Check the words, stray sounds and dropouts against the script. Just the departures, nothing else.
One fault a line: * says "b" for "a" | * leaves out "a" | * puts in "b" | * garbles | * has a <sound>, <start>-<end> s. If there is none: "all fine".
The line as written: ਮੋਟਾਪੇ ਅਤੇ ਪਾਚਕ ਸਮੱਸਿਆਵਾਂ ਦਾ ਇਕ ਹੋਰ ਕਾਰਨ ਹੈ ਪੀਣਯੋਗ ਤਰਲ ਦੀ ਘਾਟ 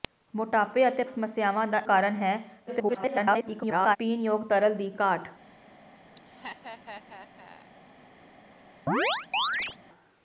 * leaves out "ਪਾਚਕ"
* leaves out "ਇਕ ਹੋਰ"
* garbles
* has a laugh, 6.2-7.7 s
* has a chirp, 8.9-9.8 s